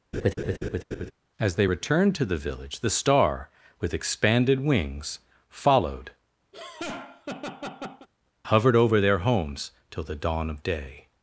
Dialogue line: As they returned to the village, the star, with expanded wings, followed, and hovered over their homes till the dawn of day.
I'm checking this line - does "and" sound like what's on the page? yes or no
no